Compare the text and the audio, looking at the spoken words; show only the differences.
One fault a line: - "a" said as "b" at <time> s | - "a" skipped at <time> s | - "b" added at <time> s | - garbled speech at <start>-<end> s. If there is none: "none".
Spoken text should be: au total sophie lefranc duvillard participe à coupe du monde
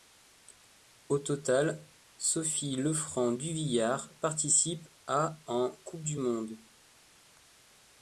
- "en" added at 5.5 s